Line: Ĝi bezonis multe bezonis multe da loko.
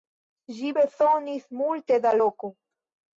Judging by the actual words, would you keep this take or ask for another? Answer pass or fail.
fail